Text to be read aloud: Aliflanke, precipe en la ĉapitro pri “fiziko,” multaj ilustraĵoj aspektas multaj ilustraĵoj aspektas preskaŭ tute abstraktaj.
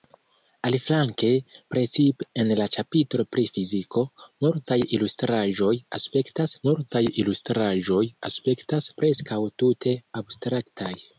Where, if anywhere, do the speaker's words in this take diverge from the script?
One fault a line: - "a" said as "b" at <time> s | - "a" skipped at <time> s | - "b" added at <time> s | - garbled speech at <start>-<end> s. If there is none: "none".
none